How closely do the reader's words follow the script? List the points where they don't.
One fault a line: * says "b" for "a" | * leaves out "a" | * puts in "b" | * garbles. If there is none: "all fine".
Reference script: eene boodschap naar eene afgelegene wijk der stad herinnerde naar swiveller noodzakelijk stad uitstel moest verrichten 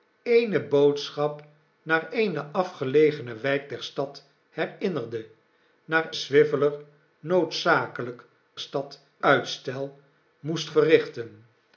all fine